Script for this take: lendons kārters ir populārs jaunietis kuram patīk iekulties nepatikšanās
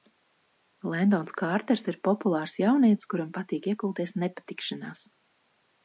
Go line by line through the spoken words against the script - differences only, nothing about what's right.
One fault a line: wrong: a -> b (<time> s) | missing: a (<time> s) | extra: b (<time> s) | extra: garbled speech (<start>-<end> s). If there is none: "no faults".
no faults